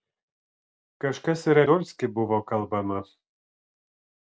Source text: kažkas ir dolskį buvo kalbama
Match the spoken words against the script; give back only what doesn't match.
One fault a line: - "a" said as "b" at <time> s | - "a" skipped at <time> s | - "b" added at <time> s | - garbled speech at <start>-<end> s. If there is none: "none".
none